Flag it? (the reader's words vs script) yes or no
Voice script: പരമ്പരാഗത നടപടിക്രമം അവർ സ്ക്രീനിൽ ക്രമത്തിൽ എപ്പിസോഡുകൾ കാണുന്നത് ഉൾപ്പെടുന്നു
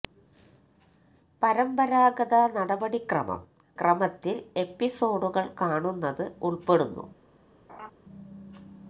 yes